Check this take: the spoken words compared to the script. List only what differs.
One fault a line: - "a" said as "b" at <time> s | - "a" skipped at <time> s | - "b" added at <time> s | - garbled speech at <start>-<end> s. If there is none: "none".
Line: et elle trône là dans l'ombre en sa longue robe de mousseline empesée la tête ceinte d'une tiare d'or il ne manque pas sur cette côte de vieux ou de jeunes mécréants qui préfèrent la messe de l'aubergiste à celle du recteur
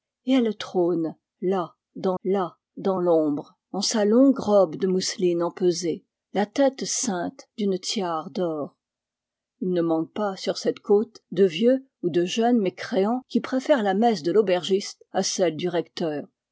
- "là dans" added at 2.2 s